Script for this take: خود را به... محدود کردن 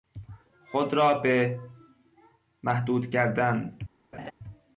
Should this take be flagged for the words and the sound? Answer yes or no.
yes